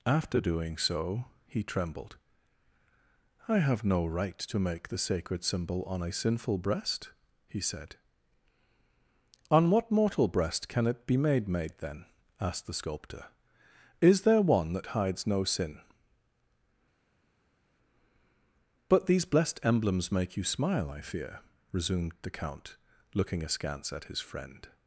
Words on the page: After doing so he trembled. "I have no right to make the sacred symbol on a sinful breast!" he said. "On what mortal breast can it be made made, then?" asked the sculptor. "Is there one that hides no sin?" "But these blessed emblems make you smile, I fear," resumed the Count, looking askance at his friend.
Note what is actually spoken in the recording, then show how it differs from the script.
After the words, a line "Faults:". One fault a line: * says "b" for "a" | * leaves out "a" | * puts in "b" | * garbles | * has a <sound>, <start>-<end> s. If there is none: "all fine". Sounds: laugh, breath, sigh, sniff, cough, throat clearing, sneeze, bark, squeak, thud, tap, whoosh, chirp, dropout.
After doing so he trembled. "I have no right to make the sacred symbol on a sinful breast!" he said. "On what mortal breast can it be made made, then?" asked the sculptor. "Is there one that hides no sin?" "But these blessed emblems make you smile, I fear," resumed the Count, looking askance at his friend.
Faults:
all fine